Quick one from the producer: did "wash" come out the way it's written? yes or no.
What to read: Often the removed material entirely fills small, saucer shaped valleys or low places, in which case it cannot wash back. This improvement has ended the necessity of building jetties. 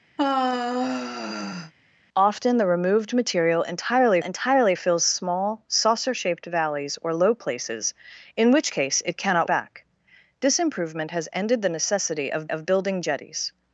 no